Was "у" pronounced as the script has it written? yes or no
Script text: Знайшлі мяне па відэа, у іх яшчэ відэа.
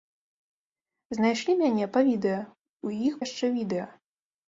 yes